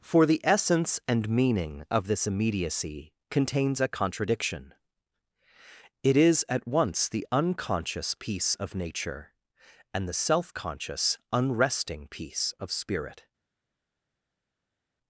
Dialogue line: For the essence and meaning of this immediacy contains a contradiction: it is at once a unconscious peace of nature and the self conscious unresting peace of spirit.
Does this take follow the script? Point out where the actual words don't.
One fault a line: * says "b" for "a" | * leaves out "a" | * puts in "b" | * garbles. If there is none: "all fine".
* says "the" for "a"